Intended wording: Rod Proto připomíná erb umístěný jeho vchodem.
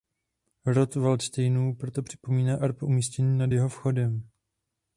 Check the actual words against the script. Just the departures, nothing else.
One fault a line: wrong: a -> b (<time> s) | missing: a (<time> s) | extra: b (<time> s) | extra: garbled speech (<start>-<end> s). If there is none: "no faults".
extra: Valdštejnů (0.9 s)
extra: nad (3.4 s)